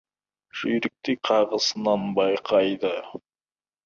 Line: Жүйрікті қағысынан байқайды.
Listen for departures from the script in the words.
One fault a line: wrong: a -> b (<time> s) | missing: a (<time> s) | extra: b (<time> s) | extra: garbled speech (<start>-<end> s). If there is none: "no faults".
no faults